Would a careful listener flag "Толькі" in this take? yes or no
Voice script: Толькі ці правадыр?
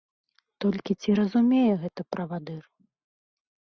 no